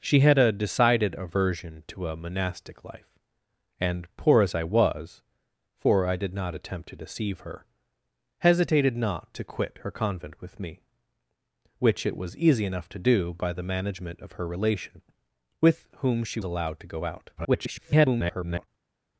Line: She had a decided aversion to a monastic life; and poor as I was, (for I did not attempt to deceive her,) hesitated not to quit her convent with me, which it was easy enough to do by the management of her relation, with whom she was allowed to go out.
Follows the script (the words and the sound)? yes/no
no